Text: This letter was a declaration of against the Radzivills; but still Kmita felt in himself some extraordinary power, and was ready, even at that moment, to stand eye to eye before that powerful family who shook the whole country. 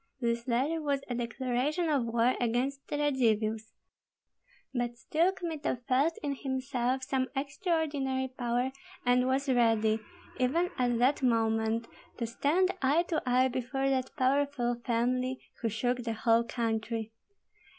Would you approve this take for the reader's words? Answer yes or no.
no